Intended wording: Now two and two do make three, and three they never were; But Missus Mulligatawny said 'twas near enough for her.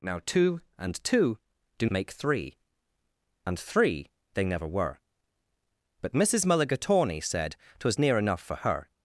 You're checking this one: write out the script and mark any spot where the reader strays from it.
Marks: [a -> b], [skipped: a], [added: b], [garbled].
Now two and two do make three, and three they never were; But Missus Mulligatawny said 'twas near enough for her.